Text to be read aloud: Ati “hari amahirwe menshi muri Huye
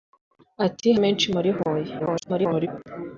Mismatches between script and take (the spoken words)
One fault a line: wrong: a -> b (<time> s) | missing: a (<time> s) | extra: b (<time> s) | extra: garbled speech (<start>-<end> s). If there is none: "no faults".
missing: hari amahirwe (0.9 s)
extra: garbled speech (2.0-2.7 s)